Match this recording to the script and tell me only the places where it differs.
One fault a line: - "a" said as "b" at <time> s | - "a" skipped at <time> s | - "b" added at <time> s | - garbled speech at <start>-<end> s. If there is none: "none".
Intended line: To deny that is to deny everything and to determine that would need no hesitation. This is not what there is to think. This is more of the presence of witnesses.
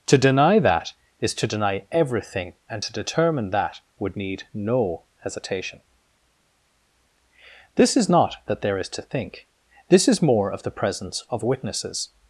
- "what" said as "that" at 8.5 s